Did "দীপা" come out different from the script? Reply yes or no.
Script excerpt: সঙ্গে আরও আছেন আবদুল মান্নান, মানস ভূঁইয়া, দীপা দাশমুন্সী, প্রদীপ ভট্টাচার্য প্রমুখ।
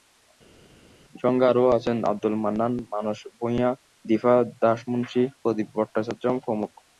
no